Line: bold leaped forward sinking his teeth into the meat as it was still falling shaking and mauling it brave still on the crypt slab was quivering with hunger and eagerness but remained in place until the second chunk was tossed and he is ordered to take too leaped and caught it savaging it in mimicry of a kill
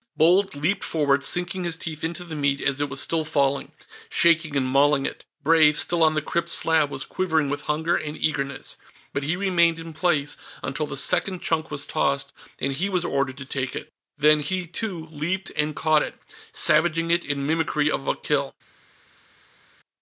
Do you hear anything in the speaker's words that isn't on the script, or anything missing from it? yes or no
yes